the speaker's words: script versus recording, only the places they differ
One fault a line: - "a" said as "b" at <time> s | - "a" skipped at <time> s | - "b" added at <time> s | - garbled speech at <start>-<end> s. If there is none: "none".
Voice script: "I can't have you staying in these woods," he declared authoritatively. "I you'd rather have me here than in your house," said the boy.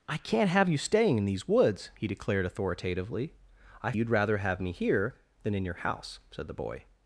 none